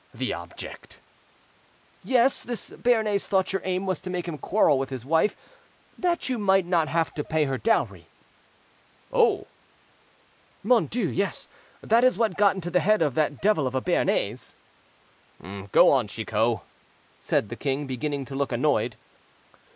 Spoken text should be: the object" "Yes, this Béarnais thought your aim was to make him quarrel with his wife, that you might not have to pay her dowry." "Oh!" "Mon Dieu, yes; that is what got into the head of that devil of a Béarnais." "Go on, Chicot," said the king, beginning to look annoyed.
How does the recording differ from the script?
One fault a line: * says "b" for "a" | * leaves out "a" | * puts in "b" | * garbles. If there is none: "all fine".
all fine